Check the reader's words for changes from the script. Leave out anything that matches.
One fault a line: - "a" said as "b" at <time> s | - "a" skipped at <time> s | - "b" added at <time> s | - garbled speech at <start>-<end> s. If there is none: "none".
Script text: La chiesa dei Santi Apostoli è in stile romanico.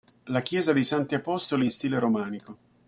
none